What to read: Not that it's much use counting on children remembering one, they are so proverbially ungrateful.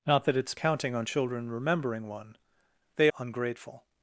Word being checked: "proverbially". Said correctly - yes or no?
no